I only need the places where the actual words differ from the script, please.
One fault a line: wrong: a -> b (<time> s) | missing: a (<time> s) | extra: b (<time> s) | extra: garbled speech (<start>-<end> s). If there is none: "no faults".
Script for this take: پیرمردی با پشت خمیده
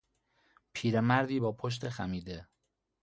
no faults